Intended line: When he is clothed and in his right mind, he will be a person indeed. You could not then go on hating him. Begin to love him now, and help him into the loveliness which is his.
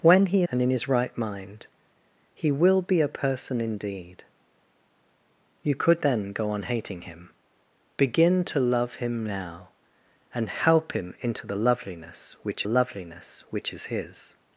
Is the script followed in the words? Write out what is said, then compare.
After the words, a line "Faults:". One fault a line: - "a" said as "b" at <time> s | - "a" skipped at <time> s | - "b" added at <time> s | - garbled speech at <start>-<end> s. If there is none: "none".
When he and in his right mind, he will be a person indeed. You could then go on hating him. Begin to love him now, and help him into the loveliness which loveliness which is his.
Faults:
- "is clothed" skipped at 0.4 s
- "not" skipped at 6.0 s
- "loveliness which" added at 12.6 s